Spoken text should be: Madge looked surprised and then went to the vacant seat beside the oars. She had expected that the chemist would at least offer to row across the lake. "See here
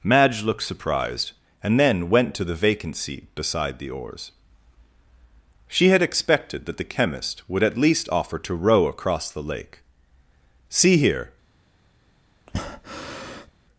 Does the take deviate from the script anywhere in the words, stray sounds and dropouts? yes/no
yes